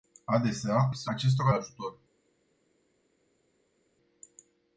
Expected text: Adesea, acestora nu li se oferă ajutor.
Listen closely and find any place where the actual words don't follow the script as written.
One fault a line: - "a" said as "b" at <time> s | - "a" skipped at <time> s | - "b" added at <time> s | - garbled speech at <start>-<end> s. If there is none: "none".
- "acestora nu" skipped at 0.9 s
- "oferă" said as "acestora" at 1.1 s